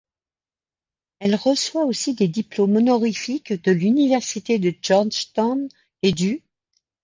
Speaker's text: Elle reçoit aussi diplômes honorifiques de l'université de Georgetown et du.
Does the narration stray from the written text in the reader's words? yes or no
yes